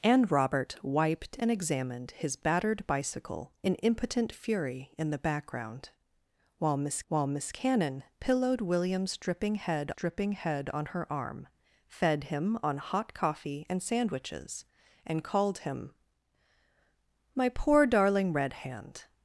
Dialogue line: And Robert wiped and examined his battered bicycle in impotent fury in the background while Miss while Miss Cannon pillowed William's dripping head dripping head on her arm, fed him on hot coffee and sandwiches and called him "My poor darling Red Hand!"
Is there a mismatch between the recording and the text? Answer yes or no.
no